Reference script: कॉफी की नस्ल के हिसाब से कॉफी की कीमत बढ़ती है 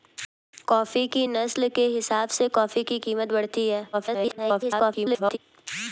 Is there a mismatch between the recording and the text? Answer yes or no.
yes